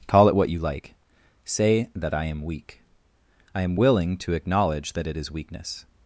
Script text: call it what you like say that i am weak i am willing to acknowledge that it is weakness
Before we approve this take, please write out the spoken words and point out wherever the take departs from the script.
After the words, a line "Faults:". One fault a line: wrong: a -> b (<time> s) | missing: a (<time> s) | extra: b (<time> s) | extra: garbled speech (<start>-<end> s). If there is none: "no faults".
call it what you like say that i am weak i am willing to acknowledge that it is weakness
Faults:
no faults